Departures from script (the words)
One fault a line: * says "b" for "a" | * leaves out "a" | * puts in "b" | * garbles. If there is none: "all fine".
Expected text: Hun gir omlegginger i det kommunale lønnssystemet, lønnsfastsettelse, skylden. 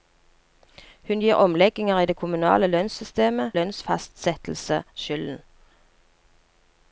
all fine